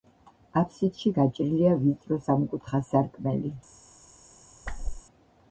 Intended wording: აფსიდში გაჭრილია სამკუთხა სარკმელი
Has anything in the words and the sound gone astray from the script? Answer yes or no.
yes